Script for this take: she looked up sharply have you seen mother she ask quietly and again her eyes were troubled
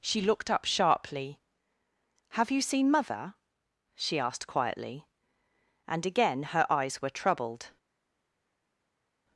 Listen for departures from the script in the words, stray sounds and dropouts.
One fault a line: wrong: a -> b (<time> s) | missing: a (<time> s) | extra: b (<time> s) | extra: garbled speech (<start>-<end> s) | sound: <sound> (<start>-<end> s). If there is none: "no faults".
wrong: ask -> asked (4.2 s)